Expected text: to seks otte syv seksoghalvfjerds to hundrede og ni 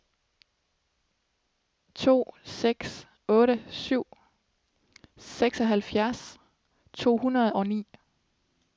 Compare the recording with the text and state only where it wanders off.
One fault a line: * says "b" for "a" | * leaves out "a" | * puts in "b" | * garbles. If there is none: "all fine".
all fine